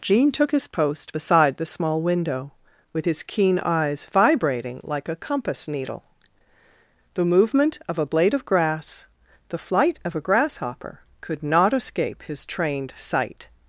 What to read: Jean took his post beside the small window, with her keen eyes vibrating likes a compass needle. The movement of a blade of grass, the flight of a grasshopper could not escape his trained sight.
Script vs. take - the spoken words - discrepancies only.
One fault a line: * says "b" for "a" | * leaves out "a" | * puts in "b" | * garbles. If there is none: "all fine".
* says "his" for "her"
* says "like" for "likes"